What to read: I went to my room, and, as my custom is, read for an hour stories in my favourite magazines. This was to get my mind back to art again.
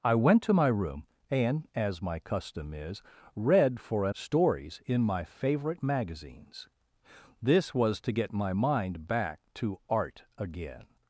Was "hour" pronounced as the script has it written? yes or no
no